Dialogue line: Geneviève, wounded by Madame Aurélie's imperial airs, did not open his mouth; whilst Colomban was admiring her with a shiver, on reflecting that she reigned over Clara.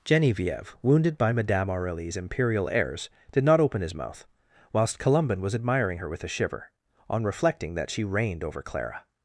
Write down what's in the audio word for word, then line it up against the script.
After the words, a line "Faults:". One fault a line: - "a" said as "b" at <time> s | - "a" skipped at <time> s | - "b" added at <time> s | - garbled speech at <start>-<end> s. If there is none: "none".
Geneviève, wounded by Madame Aurélie's imperial airs, did not open his mouth; whilst Colomban was admiring her with a shiver, on reflecting that she reigned over Clara.
Faults:
none